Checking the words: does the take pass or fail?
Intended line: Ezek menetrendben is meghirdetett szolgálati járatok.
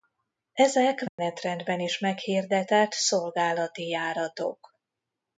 pass